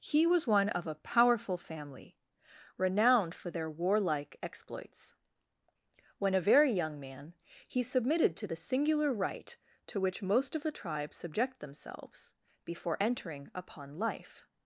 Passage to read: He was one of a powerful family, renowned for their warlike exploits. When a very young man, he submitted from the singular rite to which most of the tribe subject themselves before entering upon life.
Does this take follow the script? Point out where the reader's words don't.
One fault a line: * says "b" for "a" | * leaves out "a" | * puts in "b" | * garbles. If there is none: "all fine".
* says "to" for "from"